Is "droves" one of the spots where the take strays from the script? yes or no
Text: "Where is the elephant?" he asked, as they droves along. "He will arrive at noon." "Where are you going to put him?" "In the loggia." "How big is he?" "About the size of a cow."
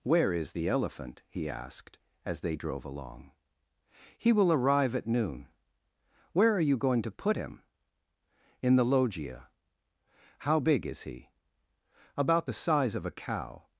yes